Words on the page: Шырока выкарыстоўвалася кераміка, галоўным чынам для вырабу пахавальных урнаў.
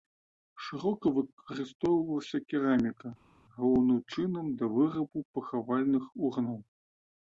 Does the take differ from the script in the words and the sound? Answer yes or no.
no